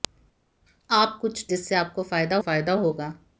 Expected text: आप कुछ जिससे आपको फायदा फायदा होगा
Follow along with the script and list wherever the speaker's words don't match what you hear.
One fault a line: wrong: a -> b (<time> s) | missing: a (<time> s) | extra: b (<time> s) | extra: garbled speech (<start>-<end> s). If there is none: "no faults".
no faults